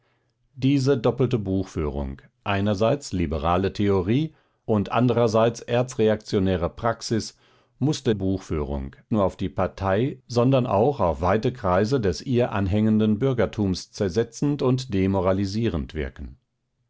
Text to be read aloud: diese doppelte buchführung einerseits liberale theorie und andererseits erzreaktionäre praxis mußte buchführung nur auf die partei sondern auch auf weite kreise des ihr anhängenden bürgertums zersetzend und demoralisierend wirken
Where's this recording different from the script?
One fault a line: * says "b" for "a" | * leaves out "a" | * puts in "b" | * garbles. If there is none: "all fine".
all fine